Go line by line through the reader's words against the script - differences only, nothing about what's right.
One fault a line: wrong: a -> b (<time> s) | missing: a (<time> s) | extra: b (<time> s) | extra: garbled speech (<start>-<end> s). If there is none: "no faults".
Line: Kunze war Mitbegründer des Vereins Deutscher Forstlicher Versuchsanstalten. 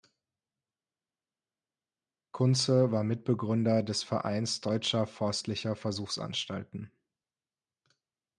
no faults